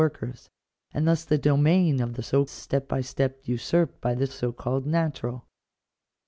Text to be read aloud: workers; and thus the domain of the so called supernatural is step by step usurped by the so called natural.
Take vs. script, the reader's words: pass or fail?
fail